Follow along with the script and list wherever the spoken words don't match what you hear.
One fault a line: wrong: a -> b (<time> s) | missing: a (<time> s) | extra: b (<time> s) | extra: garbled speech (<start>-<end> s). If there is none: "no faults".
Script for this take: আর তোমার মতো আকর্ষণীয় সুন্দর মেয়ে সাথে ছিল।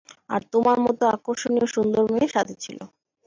no faults